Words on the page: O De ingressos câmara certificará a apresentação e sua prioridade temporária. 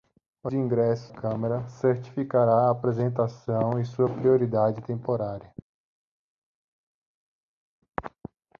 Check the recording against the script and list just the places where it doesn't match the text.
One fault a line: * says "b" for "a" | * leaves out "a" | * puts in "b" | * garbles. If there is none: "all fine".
all fine